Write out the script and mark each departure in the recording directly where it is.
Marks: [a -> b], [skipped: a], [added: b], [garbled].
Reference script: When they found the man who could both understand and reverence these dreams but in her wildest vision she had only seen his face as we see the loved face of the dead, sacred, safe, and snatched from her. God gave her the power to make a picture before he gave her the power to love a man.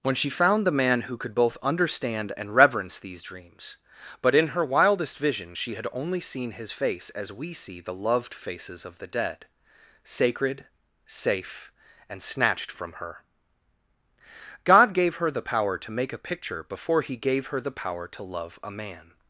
When [they -> she] found the man who could both understand and reverence these dreams but in her wildest vision she had only seen his face as we see the loved [face -> faces] of the dead, sacred, safe, and snatched from her. God gave her the power to make a picture before he gave her the power to love a man.